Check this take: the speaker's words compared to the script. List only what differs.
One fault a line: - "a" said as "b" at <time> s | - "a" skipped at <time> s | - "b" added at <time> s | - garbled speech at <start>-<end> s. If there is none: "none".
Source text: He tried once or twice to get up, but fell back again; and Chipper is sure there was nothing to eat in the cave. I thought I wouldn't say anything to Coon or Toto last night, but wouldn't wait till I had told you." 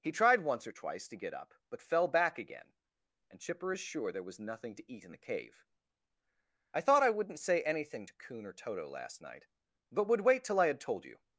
- "wouldn't" said as "would" at 10.1 s